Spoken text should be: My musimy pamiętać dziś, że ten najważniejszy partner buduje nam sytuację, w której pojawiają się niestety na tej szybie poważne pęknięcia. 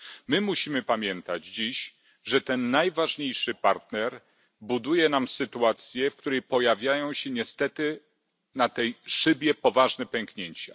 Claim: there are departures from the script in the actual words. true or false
false